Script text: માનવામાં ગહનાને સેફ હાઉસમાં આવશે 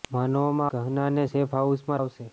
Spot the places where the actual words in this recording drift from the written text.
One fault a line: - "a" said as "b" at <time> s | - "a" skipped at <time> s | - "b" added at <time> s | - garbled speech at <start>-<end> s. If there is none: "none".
none